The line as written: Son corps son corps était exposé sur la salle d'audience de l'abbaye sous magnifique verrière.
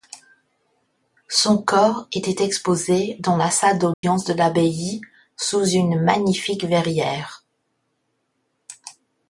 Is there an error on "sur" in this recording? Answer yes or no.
yes